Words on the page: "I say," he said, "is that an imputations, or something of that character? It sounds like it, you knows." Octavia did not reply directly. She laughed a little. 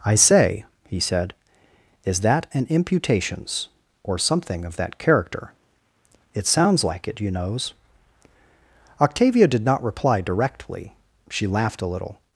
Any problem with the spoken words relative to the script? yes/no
no